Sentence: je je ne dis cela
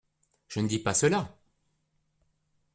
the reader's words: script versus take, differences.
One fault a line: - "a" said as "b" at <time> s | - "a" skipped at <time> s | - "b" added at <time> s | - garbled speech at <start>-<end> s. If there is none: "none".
- "je" skipped at 0.6 s
- "pas" added at 0.8 s